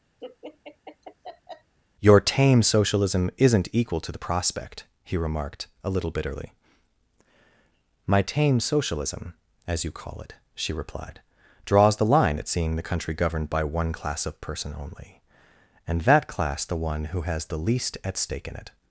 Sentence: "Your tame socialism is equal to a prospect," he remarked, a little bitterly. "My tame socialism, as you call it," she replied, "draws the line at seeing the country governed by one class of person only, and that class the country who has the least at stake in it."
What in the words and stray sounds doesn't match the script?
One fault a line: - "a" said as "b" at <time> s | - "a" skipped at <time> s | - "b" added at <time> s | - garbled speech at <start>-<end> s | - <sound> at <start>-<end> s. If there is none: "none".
- laugh at 0.2-1.7 s
- "is" said as "isn't" at 3.4 s
- "a" said as "the" at 4.1 s
- "country" said as "one" at 16.8 s